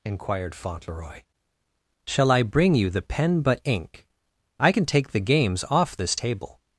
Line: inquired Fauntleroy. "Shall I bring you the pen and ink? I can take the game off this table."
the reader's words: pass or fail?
fail